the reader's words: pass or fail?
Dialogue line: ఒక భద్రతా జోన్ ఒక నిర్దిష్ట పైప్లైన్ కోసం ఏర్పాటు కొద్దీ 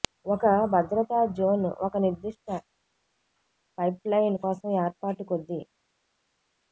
pass